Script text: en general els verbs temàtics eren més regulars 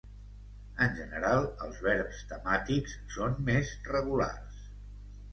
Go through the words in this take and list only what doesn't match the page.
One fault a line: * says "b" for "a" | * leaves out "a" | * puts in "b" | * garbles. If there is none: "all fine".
* says "són" for "eren"